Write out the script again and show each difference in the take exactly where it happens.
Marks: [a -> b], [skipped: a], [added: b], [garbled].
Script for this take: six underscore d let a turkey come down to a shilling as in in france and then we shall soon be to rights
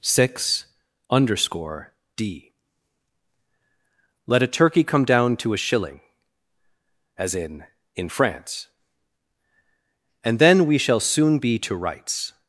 six underscore d let a turkey come down to a shilling as in in france and then we shall soon be to rights